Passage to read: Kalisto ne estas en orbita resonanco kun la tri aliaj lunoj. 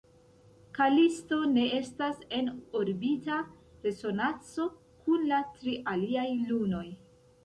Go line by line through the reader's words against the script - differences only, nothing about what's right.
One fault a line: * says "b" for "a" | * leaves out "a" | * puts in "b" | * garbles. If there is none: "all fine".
all fine